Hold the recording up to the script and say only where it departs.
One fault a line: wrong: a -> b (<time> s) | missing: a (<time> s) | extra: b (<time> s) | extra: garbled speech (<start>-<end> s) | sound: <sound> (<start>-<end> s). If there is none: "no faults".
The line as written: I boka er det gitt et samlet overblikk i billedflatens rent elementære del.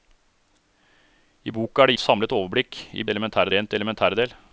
missing: gitt (2.0 s)
wrong: billedflatens -> elementære (3.1 s)